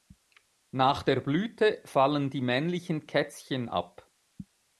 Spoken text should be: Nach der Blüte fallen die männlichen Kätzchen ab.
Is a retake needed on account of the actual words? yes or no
no